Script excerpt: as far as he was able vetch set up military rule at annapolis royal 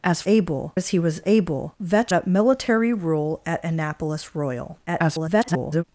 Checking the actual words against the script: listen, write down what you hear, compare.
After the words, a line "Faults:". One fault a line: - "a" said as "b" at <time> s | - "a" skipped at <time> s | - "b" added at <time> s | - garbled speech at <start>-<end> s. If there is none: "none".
as able as he was able vetch up military rule at annapolis royal [garbled]
Faults:
- "far" said as "able" at 0.3 s
- "set" skipped at 2.1 s
- garbled speech at 4.9-5.8 s